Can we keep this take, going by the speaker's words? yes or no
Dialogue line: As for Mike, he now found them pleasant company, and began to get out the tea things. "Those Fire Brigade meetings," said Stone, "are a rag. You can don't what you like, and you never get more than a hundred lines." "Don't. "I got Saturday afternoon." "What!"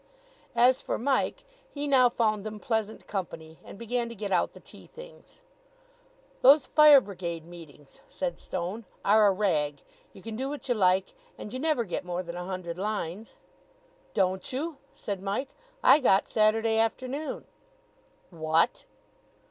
no